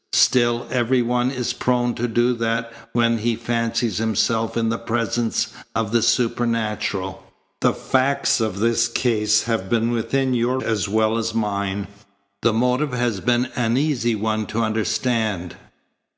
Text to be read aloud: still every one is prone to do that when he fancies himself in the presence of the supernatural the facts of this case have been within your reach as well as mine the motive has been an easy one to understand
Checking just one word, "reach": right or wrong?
wrong